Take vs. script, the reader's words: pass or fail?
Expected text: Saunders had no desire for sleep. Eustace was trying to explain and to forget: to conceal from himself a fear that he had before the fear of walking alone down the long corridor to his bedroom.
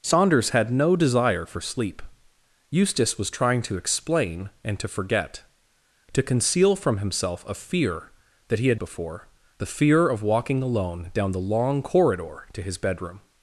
pass